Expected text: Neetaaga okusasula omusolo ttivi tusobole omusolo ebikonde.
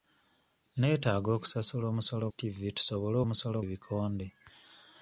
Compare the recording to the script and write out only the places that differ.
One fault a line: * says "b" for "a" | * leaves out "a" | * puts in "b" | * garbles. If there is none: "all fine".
all fine